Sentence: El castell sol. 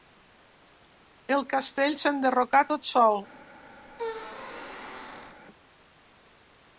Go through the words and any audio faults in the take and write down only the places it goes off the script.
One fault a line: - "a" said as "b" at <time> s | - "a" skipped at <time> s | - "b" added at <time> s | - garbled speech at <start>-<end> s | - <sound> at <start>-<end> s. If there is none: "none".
- "s'enderrocà tot" added at 2.0 s
- squeak at 3.9-5.4 s